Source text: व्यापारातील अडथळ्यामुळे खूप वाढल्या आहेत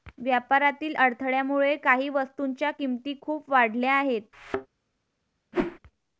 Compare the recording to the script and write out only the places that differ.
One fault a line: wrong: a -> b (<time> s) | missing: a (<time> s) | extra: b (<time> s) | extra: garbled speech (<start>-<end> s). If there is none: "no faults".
extra: काही वस्तूंच्या किमती (1.8 s)